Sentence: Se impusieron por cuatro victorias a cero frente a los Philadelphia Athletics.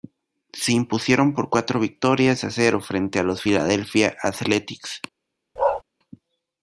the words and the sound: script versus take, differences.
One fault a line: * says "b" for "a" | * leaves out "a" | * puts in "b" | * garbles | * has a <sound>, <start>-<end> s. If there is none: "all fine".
* has a bark, 5.6-5.8 s